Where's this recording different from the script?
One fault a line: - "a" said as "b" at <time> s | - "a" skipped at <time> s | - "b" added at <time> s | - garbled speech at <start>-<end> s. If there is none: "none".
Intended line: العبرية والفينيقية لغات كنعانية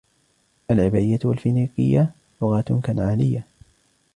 none